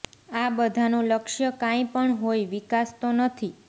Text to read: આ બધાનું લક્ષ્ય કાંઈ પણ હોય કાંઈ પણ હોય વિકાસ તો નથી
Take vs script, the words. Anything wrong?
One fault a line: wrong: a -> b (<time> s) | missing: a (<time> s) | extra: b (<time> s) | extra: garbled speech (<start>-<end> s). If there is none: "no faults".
missing: કાંઈ પણ હોય (2.5 s)